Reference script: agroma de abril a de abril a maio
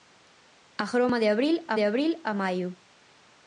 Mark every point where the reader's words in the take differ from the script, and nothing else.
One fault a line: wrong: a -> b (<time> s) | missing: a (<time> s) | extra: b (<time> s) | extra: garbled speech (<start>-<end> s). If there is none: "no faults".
no faults